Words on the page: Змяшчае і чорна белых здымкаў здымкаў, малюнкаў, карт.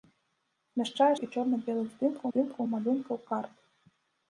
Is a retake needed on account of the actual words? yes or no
no